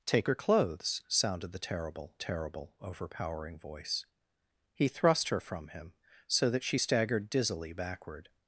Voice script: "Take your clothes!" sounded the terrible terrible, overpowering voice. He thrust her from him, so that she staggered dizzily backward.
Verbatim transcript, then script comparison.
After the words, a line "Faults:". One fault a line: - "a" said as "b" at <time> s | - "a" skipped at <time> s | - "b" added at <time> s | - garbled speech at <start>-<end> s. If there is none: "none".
"Take your clothes!" sounded the terrible terrible, overpowering voice. He thrust her from him, so that she staggered dizzily backward.
Faults:
none